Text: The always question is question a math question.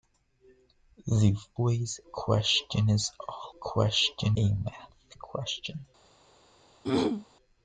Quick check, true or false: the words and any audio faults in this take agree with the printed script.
false